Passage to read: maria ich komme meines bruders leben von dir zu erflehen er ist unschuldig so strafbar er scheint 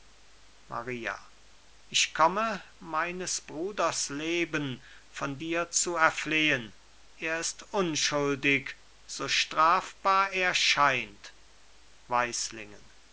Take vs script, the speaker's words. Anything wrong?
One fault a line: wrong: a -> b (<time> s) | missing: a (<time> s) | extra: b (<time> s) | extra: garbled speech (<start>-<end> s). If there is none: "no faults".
no faults